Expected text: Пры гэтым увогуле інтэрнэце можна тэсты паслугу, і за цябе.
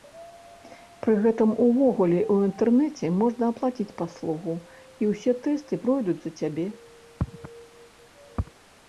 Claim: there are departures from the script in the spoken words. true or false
true